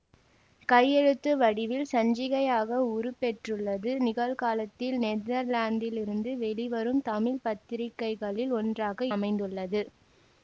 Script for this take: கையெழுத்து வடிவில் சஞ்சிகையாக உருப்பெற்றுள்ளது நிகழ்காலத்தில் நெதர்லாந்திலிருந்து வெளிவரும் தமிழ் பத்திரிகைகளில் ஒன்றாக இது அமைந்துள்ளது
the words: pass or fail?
fail